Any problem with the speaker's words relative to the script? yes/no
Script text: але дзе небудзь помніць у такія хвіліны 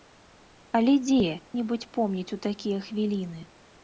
no